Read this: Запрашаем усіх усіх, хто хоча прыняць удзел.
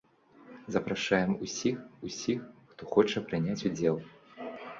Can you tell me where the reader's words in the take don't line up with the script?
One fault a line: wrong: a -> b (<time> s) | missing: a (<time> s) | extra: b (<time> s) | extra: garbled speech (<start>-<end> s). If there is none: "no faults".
no faults